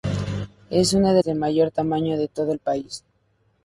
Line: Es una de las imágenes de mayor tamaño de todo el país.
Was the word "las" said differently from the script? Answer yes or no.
yes